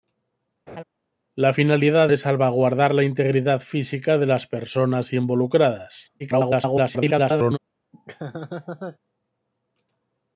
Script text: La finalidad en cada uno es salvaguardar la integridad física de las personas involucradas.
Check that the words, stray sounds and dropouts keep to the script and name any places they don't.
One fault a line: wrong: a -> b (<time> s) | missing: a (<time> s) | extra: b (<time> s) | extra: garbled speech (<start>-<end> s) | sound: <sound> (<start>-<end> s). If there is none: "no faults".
sound: laugh (0.7-0.8 s)
missing: en cada uno (2.1 s)
extra: garbled speech (6.2-7.6 s)
sound: laugh (7.9-9.0 s)